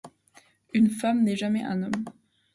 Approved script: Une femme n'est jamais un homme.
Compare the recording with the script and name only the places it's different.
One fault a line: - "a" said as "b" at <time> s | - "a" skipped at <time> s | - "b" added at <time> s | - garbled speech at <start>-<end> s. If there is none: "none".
none